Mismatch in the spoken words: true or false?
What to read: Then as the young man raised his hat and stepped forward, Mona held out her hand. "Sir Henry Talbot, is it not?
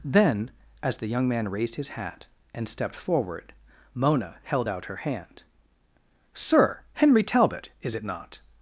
false